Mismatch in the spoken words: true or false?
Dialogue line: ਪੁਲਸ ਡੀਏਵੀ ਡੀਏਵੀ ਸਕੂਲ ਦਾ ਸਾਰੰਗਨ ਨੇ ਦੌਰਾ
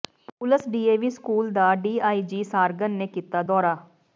true